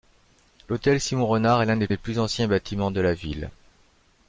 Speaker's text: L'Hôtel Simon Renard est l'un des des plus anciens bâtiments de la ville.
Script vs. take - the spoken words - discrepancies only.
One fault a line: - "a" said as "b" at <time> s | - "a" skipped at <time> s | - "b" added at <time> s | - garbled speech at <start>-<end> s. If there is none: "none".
none